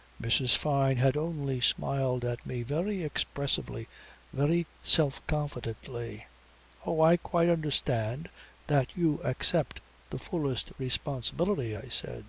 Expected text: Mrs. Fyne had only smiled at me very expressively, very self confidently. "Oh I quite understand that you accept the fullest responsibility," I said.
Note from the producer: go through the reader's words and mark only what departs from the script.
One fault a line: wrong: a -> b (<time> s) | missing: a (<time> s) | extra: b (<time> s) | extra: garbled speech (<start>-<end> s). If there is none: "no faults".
no faults